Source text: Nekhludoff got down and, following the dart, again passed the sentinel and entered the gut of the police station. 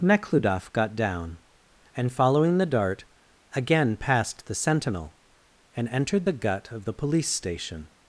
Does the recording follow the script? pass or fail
pass